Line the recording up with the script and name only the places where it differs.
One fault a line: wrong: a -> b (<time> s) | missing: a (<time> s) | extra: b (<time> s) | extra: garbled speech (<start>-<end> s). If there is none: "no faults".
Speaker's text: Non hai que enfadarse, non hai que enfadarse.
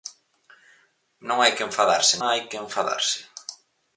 missing: non (2.1 s)